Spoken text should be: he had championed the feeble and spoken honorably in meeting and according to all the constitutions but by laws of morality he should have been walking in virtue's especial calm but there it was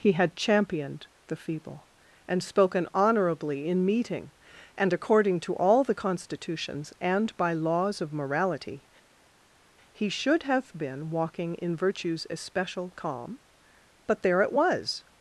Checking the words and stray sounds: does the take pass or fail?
fail